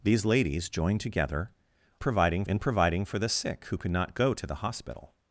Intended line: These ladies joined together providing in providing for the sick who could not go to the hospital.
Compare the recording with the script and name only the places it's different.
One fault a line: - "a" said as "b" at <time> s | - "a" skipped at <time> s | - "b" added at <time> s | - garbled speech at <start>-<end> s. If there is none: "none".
none